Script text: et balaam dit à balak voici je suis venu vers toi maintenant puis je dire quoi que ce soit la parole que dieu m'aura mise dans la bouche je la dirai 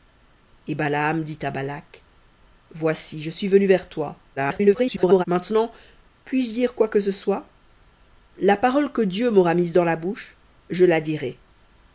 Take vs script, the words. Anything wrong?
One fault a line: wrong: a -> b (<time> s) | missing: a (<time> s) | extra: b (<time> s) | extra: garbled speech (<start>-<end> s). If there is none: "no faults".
extra: garbled speech (4.4-5.2 s)